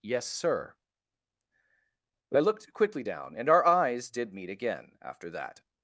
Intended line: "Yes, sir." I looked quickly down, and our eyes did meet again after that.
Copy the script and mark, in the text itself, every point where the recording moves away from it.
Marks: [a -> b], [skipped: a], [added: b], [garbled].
"Yes, sir." I looked quickly down, and our eyes did meet again after that.